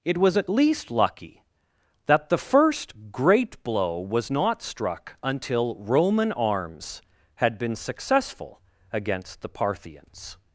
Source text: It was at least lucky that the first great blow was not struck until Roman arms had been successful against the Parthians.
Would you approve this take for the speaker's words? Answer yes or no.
yes